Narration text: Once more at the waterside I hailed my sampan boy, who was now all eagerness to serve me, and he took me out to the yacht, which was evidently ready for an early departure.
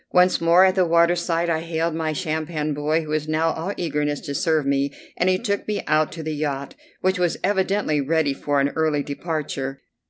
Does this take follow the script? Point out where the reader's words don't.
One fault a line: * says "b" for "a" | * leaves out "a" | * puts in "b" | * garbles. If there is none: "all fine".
all fine